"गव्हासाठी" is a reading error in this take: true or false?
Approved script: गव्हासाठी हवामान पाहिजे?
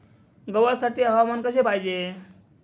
false